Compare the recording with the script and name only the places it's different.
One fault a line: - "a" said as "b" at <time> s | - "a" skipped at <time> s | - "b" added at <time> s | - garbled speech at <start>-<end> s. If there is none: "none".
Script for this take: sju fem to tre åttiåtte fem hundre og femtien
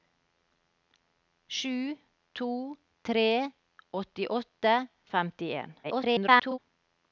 - "fem" skipped at 2.0 s
- "fem hundre" skipped at 4.8 s
- garbled speech at 5.8-6.6 s